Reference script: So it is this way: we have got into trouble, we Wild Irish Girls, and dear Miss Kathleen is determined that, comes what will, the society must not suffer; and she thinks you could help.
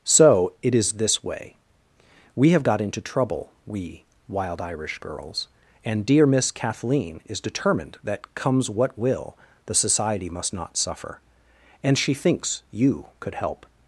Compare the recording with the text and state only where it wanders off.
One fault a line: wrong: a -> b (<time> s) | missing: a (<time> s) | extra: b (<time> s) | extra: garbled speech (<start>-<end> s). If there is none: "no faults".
no faults